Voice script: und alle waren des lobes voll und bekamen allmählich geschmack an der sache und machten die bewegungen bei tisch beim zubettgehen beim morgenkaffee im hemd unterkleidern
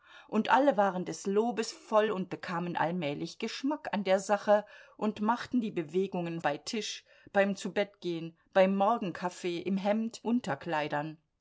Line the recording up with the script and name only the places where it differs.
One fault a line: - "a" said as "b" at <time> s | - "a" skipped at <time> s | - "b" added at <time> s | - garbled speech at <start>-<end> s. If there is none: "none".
none